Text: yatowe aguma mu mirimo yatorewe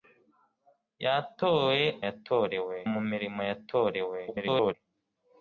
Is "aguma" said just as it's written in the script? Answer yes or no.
no